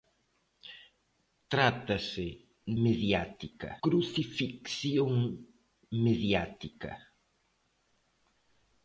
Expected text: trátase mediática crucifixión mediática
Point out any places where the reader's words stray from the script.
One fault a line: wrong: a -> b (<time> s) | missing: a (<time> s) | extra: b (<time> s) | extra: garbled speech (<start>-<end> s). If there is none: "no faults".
no faults